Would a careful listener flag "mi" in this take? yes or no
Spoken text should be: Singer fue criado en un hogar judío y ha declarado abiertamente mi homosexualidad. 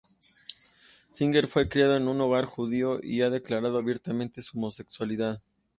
yes